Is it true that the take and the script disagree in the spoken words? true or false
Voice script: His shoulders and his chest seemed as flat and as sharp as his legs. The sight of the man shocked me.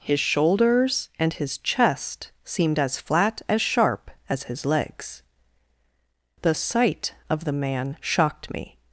true